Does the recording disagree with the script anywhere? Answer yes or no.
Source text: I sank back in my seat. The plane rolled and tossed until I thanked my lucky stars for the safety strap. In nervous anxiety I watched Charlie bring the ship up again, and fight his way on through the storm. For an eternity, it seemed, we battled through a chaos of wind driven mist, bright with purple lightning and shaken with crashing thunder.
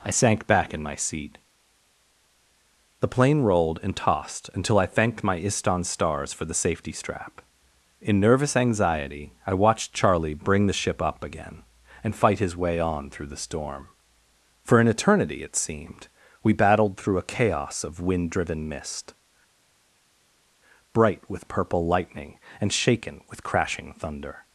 yes